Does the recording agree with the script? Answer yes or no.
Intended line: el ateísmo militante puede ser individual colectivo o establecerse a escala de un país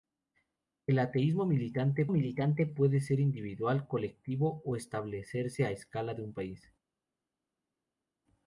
no